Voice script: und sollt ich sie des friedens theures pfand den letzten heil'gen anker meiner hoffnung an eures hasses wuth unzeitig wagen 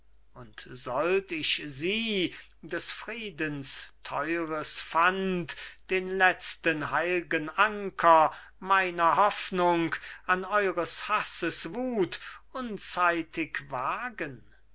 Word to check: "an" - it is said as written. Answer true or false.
true